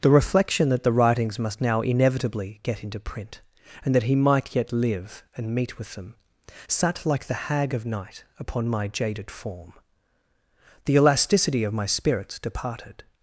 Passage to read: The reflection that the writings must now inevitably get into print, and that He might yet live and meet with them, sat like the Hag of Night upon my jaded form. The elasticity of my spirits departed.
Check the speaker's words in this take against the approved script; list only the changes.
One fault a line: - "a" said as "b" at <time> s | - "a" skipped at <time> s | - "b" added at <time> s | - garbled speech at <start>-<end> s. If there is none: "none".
none